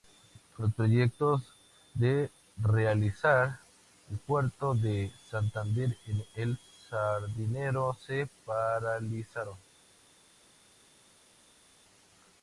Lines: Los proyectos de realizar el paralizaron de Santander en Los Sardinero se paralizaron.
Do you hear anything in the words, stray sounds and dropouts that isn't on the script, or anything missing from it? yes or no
yes